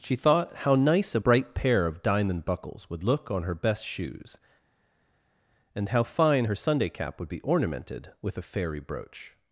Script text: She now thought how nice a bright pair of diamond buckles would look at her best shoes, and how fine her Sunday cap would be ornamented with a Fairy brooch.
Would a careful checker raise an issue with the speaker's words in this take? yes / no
yes